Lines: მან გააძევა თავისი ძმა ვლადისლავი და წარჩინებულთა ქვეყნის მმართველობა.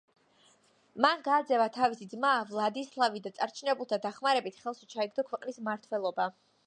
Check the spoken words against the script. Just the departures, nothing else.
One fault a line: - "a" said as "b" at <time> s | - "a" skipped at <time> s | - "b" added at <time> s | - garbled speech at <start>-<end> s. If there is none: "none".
- "დახმარებით ხელში ჩაიგდო" added at 4.1 s